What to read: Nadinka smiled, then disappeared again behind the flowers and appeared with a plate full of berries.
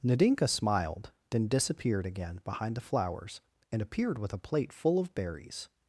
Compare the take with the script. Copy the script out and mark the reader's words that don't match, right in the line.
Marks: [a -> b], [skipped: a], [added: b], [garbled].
Nadinka smiled, then disappeared again behind the flowers and appeared with a plate full of berries.